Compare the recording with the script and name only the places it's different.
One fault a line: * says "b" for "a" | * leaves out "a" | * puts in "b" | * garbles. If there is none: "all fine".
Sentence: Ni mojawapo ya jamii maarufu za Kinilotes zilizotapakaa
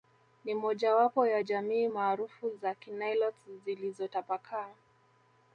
all fine